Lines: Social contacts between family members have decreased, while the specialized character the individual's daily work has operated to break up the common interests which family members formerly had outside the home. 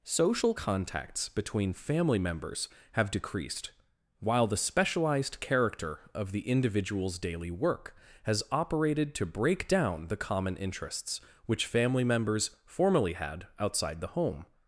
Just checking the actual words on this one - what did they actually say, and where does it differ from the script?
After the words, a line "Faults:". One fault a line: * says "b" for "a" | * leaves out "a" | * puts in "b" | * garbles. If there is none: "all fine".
Social contacts between family members have decreased, while the specialized character of the individual's daily work has operated to break down the common interests which family members formerly had outside the home.
Faults:
* puts in "of"
* says "down" for "up"